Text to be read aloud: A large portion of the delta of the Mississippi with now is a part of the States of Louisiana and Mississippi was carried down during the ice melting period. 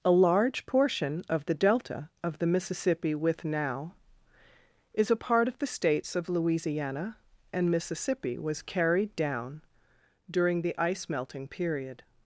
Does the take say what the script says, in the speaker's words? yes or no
yes